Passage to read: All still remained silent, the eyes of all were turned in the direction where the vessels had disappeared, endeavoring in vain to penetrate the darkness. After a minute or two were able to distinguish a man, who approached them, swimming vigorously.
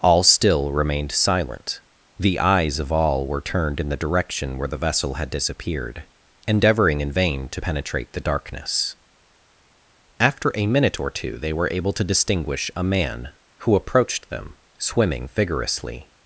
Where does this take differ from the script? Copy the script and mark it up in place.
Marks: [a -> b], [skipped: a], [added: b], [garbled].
All still remained silent, the eyes of all were turned in the direction where the [vessels -> vessel] had disappeared, endeavoring in vain to penetrate the darkness. After a minute or two [added: they] were able to distinguish a man, who approached them, swimming vigorously.